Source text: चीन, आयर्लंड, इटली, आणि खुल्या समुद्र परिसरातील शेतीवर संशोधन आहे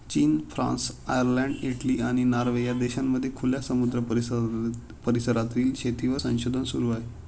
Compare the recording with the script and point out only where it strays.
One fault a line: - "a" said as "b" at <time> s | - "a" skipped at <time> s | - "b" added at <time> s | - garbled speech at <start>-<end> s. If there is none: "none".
- "फ्रान्स" added at 0.5 s
- "नॉर्वे या देशांमध्ये" added at 2.2 s
- "सुरू" added at 6.6 s